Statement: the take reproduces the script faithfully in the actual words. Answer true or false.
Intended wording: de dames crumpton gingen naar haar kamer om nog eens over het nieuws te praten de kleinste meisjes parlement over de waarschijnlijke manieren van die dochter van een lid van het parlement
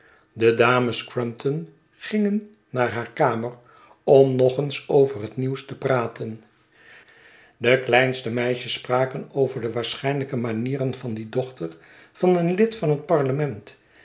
false